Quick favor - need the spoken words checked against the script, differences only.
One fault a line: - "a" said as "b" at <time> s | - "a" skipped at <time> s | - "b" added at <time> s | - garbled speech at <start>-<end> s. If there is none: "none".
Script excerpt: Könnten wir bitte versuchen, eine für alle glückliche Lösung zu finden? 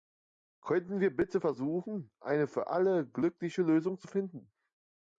none